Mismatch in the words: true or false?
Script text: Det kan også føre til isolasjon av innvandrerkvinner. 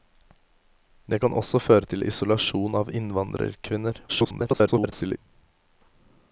true